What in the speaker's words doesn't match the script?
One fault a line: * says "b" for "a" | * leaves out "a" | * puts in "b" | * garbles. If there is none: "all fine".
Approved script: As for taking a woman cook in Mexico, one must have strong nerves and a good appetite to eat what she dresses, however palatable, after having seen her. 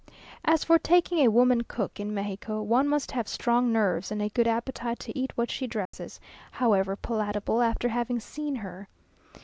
all fine